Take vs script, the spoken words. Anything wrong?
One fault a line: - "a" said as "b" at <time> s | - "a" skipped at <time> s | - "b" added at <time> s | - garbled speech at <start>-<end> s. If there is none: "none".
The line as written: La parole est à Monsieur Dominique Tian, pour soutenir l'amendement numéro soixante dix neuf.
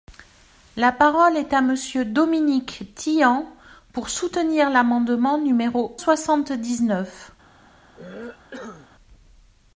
none